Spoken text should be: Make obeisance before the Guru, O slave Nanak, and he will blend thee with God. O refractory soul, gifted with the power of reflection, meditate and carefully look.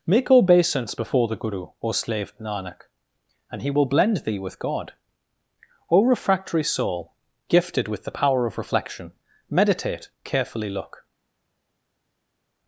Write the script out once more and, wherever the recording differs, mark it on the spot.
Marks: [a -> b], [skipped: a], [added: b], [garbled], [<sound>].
Make obeisance before the Guru, O slave Nanak, and he will blend thee with God. O refractory soul, gifted with the power of reflection, meditate [skipped: and] carefully look.